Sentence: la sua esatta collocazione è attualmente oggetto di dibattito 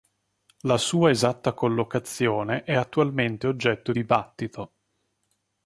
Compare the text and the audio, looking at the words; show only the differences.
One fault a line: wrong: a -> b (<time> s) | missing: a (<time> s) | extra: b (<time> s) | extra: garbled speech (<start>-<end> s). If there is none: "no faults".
missing: di (3.9 s)